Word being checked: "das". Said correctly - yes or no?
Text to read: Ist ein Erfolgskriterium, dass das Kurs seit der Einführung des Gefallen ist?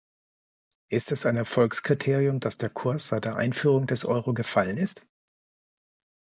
no